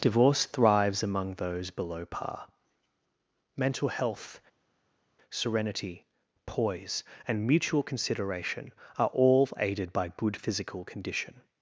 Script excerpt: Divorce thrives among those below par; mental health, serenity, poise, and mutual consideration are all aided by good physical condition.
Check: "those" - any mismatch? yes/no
no